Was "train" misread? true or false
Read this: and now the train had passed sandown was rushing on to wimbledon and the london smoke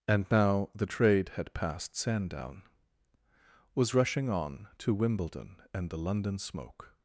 true